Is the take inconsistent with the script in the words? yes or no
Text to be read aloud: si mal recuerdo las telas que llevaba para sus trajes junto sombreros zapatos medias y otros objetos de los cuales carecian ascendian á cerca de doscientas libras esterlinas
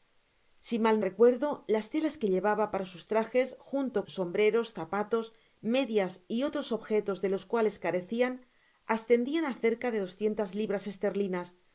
no